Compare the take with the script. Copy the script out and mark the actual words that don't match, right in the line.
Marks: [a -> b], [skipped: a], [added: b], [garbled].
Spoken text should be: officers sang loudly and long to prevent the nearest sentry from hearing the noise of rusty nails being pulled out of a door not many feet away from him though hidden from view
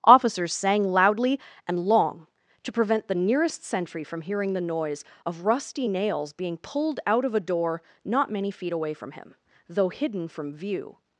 officers sang loudly and long to prevent the nearest sentry from hearing the noise of rusty nails being pulled out of a door not many feet away from him though hidden from view